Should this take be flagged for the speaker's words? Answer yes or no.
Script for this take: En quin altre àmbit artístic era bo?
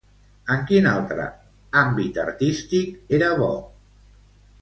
no